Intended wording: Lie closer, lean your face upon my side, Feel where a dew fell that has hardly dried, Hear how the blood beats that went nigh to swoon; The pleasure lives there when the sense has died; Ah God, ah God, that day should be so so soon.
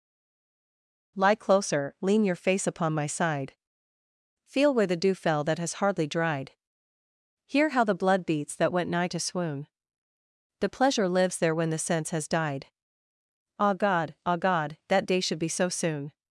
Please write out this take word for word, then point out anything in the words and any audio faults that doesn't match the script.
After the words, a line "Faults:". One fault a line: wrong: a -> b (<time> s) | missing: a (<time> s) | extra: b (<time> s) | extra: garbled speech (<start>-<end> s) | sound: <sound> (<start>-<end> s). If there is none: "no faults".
Lie closer, lean your face upon my side, Feel where the dew fell that has hardly dried, Hear how the blood beats that went nigh to swoon; The pleasure lives there when the sense has died; Ah God, ah God, that day should be so soon.
Faults:
wrong: a -> the (4.9 s)
missing: so (15.7 s)